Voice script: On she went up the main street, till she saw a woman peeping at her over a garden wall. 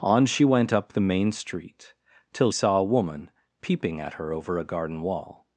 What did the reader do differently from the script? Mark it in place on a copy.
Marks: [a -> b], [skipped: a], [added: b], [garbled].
On she went up the main street, till [skipped: she] saw a woman peeping at her over a garden wall.